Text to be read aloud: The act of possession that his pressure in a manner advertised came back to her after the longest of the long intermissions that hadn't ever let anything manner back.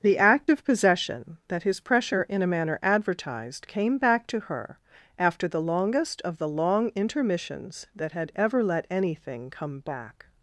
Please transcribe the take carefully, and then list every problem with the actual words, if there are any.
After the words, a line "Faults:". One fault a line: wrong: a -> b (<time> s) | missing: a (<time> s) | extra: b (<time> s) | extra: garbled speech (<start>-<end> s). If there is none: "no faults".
The act of possession that his pressure in a manner advertised came back to her after the longest of the long intermissions that had ever let anything come back.
Faults:
wrong: hadn't -> had (8.1 s)
wrong: manner -> come (9.5 s)